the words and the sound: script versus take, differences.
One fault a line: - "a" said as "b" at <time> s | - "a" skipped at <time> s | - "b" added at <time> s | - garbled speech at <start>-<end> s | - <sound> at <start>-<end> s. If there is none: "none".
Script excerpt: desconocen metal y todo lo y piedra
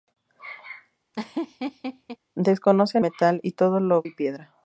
- laugh at 1.1-2.2 s